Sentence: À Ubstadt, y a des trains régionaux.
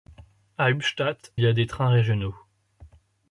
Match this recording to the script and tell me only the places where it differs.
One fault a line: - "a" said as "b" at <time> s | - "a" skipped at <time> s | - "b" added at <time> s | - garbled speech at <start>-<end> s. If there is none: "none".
none